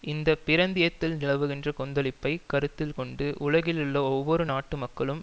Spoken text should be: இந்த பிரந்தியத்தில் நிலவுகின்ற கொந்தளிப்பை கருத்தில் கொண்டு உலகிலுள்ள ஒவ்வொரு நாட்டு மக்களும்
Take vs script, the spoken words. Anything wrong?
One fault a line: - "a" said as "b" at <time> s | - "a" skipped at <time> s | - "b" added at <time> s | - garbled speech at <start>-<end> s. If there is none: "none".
none